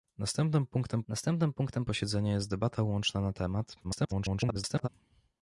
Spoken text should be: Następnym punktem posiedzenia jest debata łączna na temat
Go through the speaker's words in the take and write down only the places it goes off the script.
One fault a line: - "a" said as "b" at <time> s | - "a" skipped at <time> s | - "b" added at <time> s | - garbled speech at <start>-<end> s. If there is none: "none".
- "następnym punktem" added at 1.1 s
- garbled speech at 3.8-4.9 s